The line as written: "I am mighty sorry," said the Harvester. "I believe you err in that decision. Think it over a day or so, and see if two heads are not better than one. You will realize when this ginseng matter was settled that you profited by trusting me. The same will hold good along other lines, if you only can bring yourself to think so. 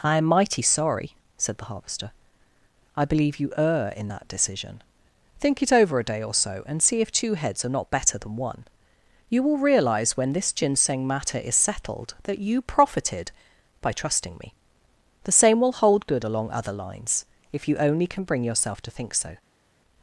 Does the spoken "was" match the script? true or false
false